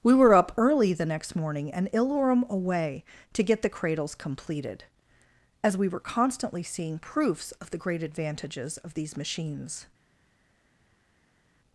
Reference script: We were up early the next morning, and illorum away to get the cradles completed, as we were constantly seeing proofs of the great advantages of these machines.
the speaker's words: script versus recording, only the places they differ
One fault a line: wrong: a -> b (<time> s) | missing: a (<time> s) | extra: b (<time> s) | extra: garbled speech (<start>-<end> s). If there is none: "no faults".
no faults